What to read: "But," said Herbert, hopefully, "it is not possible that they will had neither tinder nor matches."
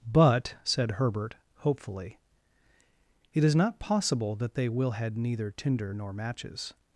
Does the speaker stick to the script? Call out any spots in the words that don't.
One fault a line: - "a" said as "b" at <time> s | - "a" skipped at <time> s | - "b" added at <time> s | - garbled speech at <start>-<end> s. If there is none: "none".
none